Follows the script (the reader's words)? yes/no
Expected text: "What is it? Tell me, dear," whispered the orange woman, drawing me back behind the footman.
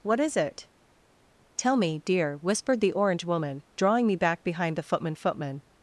no